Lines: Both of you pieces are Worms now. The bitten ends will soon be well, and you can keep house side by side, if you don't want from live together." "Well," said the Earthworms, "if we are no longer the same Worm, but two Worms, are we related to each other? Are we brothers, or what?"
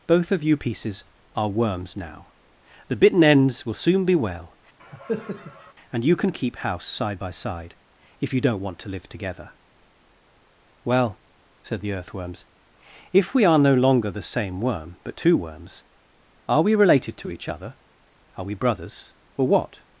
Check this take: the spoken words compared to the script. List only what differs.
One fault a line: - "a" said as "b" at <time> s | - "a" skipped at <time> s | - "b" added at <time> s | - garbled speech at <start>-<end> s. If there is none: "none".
- "from" said as "to" at 8.8 s